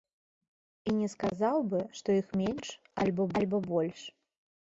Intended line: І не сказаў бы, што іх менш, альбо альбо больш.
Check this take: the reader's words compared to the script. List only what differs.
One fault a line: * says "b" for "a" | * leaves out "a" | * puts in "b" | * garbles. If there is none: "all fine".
all fine